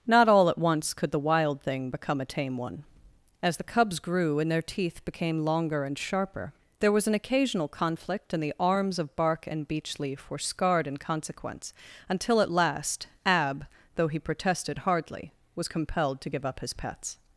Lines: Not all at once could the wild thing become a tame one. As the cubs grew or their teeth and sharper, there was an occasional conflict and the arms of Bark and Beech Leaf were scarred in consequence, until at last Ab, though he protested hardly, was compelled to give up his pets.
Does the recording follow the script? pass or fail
fail